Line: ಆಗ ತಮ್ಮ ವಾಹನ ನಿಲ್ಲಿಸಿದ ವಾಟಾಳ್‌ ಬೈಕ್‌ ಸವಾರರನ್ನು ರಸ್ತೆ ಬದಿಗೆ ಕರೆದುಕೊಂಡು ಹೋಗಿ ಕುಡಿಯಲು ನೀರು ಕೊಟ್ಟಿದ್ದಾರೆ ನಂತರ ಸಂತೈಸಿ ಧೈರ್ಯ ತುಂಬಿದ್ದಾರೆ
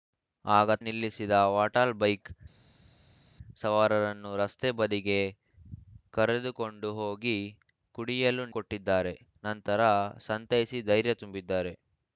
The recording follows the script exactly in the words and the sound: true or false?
false